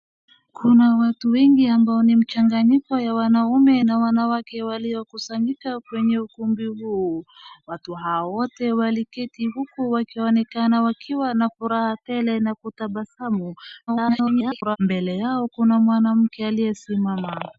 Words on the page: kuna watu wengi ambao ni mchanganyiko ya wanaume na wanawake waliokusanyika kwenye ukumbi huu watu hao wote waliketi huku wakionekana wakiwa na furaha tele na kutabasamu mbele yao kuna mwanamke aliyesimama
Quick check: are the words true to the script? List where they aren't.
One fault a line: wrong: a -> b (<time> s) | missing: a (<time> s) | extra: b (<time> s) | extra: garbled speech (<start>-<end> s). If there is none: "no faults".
extra: garbled speech (13.9-14.8 s)